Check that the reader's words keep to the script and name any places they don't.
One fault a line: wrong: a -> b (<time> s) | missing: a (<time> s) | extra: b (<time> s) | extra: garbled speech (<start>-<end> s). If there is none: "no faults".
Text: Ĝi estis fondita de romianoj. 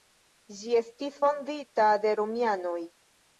no faults